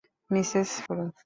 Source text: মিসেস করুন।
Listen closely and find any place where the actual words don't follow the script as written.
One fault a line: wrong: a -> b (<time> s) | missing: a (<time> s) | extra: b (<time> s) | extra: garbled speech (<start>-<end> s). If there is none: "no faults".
no faults